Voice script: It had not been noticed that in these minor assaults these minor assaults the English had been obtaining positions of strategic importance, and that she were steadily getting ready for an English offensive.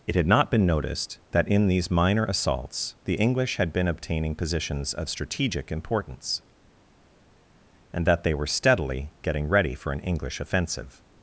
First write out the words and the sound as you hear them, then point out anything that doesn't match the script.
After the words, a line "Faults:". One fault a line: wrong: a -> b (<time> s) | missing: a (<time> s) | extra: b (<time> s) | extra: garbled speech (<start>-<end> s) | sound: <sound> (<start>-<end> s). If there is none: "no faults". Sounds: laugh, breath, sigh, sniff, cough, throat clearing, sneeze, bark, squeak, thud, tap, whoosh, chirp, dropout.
It had not been noticed that in these minor assaults the English had been obtaining positions of strategic importance, and that they were steadily getting ready for an English offensive.
Faults:
missing: these minor assaults (2.9 s)
wrong: she -> they (8.2 s)